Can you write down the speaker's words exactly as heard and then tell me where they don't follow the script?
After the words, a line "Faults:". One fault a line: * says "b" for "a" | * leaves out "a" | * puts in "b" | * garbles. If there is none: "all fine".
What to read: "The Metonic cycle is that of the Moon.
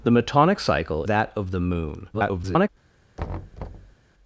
"The Metonic cycle that of the Moon. [garbled]
Faults:
* leaves out "is"
* garbles